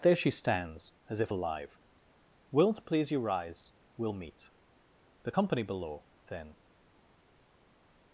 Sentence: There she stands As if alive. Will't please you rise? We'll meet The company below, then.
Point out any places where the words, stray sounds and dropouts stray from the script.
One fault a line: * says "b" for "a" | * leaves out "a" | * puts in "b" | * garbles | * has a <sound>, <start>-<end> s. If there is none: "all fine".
all fine